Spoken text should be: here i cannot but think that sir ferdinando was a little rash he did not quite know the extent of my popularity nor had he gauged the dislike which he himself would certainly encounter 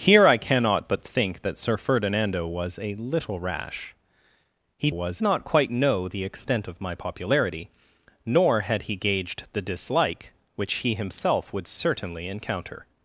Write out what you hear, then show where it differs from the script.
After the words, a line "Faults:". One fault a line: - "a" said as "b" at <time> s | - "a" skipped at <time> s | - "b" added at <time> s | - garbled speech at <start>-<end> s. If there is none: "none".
here i cannot but think that sir ferdinando was a little rash he was not quite know the extent of my popularity nor had he gauged the dislike which he himself would certainly encounter
Faults:
- "did" said as "was" at 4.9 s